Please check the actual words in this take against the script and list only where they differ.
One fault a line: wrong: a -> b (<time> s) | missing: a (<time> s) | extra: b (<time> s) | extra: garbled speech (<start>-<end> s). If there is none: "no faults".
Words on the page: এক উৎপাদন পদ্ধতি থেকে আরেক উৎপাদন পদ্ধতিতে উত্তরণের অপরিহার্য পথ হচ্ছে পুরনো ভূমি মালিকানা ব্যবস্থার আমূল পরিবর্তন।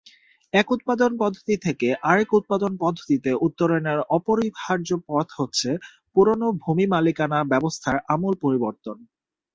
no faults